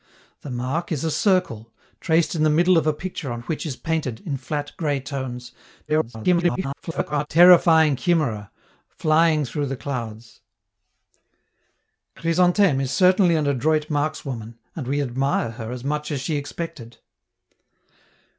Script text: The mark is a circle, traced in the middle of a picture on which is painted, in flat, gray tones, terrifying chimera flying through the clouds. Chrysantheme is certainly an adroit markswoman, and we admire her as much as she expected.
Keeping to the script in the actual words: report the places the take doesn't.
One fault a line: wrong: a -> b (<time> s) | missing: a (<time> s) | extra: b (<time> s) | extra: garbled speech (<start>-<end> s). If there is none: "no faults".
extra: garbled speech (5.9-7.3 s)